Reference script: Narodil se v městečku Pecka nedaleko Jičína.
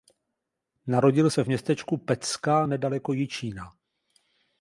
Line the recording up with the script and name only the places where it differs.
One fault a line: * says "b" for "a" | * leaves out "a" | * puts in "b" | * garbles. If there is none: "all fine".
all fine